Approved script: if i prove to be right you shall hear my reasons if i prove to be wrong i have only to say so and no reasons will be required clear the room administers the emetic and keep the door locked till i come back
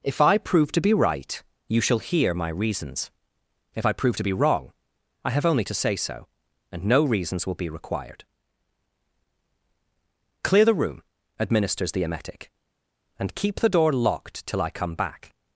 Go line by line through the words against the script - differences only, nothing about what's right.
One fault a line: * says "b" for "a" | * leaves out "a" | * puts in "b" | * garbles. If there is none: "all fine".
all fine